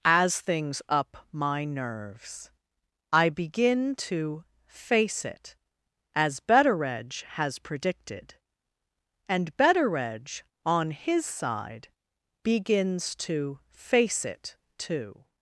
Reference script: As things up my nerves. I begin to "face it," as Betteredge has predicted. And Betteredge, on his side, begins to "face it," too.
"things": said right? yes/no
yes